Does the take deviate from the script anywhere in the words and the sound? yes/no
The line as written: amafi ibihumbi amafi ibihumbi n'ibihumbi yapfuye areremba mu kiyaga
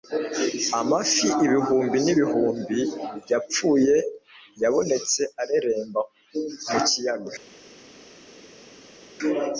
yes